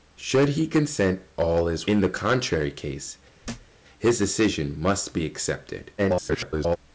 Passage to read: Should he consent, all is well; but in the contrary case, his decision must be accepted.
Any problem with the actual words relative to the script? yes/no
yes